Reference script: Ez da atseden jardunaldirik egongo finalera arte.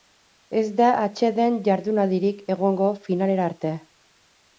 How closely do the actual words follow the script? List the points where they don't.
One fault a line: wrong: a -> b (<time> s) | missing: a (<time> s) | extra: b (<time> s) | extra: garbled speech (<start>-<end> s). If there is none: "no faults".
no faults